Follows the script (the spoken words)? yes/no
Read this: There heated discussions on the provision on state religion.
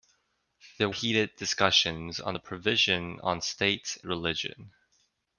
yes